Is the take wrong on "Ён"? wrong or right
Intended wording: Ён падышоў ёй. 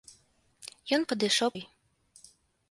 right